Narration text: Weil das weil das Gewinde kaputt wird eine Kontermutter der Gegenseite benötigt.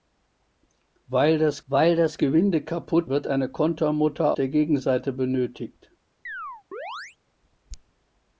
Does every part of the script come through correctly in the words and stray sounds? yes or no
no